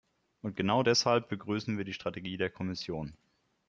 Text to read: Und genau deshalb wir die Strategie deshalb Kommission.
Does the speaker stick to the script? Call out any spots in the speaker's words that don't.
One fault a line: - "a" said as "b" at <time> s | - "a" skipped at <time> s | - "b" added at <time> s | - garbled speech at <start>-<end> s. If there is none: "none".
- "begrüßen" added at 1.3 s
- "deshalb" said as "der" at 2.4 s